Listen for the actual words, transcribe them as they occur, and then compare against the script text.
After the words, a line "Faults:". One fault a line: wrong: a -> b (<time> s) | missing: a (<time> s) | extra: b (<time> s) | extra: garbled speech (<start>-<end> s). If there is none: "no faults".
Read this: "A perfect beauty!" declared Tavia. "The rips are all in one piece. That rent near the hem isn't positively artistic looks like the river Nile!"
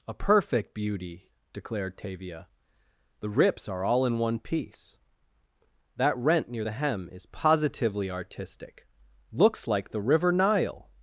"A perfect beauty!" declared Tavia. "The rips are all in one piece. That rent near the hem is positively artistic looks like the river Nile!"
Faults:
wrong: isn't -> is (7.1 s)